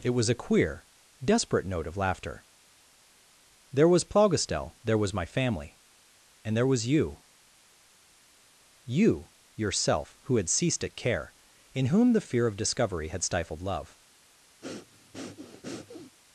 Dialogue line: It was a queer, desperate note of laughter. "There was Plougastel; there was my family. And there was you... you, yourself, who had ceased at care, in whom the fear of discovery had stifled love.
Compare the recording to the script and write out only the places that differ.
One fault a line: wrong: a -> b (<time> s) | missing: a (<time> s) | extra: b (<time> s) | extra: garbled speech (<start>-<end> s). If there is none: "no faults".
no faults